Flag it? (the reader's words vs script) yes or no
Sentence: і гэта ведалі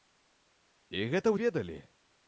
no